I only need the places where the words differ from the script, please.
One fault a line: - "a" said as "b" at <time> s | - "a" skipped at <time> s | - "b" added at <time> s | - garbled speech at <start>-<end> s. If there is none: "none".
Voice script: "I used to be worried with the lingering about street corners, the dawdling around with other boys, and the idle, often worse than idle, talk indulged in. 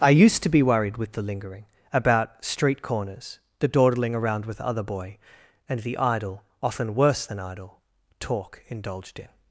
- "boys" said as "boy" at 4.8 s